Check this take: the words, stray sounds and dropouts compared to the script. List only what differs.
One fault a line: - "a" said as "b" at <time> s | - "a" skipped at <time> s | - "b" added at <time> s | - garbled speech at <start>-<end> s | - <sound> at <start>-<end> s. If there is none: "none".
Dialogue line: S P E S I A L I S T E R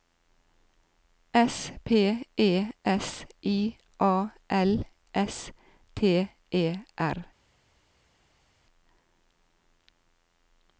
- "I" skipped at 4.8 s